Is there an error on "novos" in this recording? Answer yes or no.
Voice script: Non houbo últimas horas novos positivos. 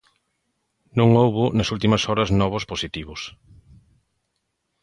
no